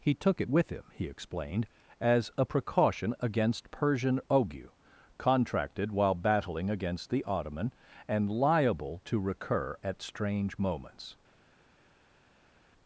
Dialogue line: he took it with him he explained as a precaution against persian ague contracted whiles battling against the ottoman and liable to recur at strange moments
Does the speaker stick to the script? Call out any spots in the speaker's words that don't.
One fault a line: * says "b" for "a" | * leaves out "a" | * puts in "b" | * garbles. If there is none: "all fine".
* says "while" for "whiles"